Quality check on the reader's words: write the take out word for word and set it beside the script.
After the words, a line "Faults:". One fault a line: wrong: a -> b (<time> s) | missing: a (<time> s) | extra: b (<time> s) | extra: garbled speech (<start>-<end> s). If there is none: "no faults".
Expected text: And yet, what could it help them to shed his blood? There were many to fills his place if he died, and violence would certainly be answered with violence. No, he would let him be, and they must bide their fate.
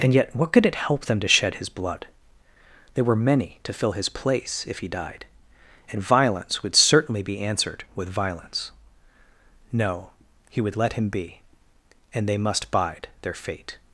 And yet, what could it help them to shed his blood? There were many to fill his place if he died, and violence would certainly be answered with violence. No, he would let him be, and they must bide their fate.
Faults:
wrong: fills -> fill (3.7 s)